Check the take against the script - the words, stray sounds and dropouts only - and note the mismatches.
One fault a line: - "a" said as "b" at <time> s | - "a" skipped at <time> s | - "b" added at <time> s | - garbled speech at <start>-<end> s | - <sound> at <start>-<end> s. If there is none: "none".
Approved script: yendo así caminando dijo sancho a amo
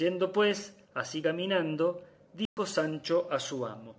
- "pues" added at 0.3 s
- dropout at 2.5-2.6 s
- "su" added at 3.4 s